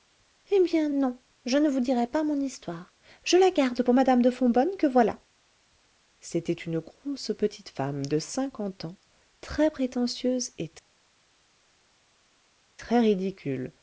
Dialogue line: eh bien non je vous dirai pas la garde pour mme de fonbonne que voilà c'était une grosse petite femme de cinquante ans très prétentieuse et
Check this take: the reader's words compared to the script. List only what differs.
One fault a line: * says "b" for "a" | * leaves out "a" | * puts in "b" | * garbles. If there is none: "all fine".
* puts in "ne"
* puts in "mon histoire je"